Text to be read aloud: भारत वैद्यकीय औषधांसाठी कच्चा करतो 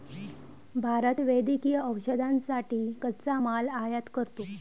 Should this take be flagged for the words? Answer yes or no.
yes